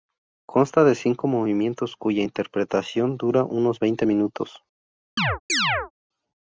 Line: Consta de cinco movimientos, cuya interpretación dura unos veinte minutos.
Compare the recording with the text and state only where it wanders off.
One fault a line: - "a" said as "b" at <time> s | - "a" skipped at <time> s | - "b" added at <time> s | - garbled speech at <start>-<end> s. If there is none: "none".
none